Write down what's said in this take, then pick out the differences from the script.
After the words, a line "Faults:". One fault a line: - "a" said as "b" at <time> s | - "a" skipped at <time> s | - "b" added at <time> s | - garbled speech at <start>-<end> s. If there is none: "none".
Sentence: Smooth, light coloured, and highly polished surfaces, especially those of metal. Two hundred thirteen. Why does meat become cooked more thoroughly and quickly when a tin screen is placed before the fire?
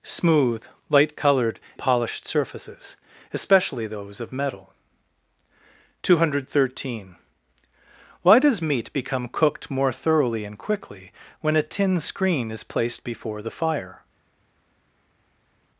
Smooth, light coloured, polished surfaces, especially those of metal. Two hundred thirteen. Why does meat become cooked more thoroughly and quickly when a tin screen is placed before the fire?
Faults:
- "and highly" skipped at 1.6 s